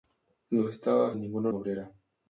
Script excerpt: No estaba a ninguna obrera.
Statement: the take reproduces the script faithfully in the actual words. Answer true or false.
true